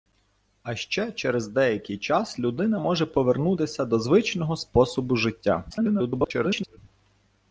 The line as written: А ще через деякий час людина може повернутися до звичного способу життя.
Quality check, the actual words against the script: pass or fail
fail